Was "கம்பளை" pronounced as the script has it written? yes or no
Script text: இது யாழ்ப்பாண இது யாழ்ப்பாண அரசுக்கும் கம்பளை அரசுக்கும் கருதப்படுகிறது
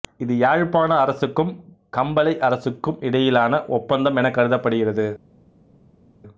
no